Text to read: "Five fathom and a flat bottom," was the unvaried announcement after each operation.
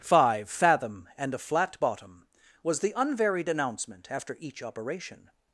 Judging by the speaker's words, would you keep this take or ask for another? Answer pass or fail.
pass